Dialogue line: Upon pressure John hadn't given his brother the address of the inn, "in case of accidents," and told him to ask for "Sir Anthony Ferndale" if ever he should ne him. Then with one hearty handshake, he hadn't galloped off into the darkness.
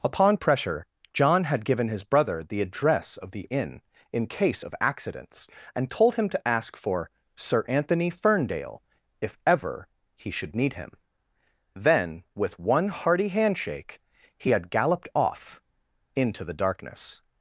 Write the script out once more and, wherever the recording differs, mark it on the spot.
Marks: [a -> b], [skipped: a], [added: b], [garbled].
Upon pressure John [hadn't -> had] given his brother the address of the inn, "in case of accidents," and told him to ask for "Sir Anthony Ferndale" if ever he should [ne -> need] him. Then with one hearty handshake, he [hadn't -> had] galloped off into the darkness.